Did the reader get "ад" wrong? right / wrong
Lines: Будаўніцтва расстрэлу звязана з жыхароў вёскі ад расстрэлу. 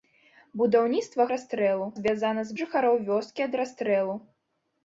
right